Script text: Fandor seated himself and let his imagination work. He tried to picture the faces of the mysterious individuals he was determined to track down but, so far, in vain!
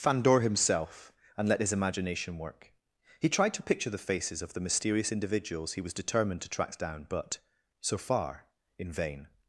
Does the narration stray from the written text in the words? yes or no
yes